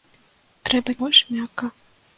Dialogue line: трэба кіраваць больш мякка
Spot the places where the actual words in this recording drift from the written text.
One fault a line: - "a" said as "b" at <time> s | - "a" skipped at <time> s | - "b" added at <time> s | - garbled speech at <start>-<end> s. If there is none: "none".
- "кіраваць" skipped at 0.9 s